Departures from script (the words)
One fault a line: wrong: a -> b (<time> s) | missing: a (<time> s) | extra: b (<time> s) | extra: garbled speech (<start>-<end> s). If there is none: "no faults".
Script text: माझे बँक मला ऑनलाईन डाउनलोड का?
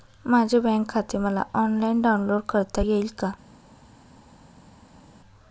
extra: खाते (0.9 s)
extra: करता येईल (2.5 s)